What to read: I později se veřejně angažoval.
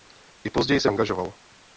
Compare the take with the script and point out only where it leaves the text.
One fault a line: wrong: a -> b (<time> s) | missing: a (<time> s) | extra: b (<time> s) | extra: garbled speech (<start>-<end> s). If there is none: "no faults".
missing: veřejně (0.9 s)